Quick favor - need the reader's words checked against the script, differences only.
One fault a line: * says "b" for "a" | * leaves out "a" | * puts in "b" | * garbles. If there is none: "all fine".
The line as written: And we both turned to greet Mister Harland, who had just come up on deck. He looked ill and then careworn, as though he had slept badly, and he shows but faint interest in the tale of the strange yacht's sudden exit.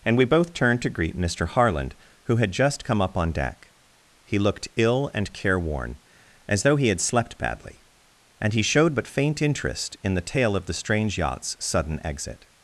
* leaves out "then"
* says "showed" for "shows"